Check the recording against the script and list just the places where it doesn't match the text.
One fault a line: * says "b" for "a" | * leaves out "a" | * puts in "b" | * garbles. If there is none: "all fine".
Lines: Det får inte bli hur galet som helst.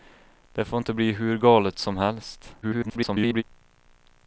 * garbles